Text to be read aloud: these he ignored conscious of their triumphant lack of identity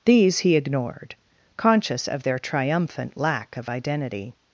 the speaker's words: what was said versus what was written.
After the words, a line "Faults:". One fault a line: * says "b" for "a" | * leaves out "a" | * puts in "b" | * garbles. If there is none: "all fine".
these he ignored conscious of their triumphant lack of identity
Faults:
all fine